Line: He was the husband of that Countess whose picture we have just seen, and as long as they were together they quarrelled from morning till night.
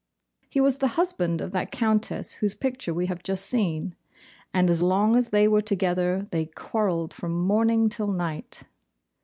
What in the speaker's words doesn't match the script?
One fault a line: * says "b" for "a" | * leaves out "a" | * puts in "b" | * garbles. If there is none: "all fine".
all fine